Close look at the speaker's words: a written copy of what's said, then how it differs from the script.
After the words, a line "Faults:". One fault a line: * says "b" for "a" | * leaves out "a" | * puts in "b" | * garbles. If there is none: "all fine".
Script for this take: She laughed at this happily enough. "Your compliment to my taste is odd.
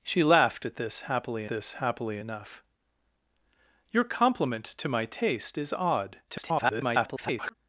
She laughed at this happily this happily enough. "Your compliment to my taste is odd. [garbled]
Faults:
* puts in "this happily"
* garbles